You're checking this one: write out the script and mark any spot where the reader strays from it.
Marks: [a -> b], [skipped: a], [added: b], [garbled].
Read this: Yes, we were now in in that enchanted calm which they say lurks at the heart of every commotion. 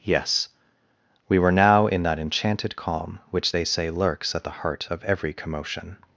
Yes, we were now in [skipped: in] that enchanted calm which they say lurks at the heart of every commotion.